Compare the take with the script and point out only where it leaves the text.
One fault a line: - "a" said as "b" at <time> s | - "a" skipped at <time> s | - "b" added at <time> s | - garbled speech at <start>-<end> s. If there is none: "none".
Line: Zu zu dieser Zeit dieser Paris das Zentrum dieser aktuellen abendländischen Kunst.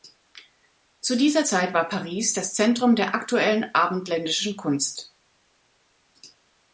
- "zu" skipped at 1.1 s
- "dieser" said as "war" at 1.7 s
- "dieser" said as "der" at 3.0 s